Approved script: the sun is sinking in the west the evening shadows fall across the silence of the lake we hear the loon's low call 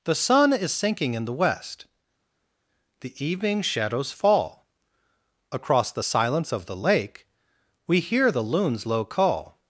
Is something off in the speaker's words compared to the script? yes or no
no